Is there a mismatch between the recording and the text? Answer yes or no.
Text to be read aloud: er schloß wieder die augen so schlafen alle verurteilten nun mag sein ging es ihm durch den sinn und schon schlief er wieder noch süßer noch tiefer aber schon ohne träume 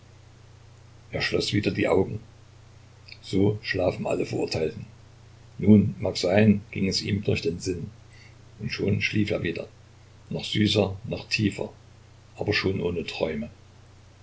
no